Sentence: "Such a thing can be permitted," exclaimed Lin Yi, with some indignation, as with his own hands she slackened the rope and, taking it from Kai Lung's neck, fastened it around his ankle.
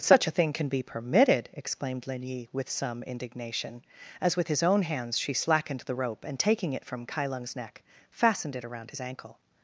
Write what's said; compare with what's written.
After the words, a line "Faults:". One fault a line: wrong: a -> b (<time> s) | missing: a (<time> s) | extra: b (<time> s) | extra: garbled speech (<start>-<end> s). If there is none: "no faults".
"Such a thing can be permitted," exclaimed Lin Yi, with some indignation, as with his own hands she slackened the rope and, taking it from Kai Lung's neck, fastened it around his ankle.
Faults:
no faults